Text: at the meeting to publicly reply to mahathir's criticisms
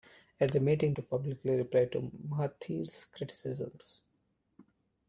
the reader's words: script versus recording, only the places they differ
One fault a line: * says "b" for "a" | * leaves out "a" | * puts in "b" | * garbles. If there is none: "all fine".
all fine